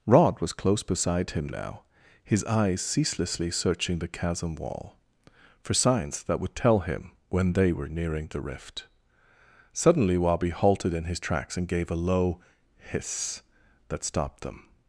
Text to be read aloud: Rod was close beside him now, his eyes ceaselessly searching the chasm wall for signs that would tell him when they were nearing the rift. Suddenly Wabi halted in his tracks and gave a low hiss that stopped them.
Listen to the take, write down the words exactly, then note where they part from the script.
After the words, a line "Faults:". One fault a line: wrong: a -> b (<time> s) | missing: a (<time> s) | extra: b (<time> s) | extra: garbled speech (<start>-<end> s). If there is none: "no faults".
Rod was close beside him now, his eyes ceaselessly searching the chasm wall for signs that would tell him when they were nearing the rift. Suddenly Wabi halted in his tracks and gave a low hiss that stopped them.
Faults:
no faults